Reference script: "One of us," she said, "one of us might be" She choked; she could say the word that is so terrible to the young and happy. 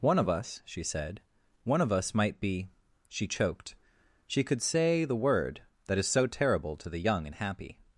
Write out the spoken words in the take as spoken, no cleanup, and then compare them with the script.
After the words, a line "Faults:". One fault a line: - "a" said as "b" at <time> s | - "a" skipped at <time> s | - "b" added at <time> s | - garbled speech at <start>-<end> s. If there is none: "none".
"One of us," she said, "one of us might be" She choked; she could say the word that is so terrible to the young and happy.
Faults:
none